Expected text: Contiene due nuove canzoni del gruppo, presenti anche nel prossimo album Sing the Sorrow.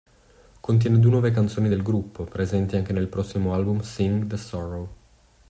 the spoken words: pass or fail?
pass